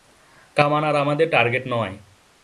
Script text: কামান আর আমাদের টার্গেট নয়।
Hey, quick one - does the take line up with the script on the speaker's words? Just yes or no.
yes